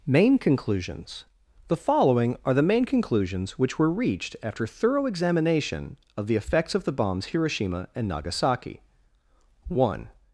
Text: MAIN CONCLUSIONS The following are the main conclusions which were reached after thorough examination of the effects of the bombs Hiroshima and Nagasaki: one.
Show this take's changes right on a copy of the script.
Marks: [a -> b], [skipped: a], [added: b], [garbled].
MAIN CONCLUSIONS The following are the main conclusions which were reached after thorough examination of the effects of the bombs Hiroshima and Nagasaki: one.